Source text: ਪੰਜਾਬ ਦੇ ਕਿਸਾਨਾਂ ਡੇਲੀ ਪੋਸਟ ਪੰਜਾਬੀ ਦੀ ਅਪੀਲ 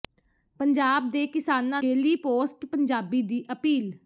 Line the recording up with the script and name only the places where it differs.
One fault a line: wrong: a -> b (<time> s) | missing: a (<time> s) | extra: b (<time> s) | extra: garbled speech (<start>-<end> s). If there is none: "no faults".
no faults